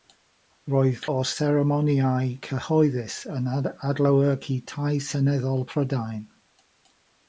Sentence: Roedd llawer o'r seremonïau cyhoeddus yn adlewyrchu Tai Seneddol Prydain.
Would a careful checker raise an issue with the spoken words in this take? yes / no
yes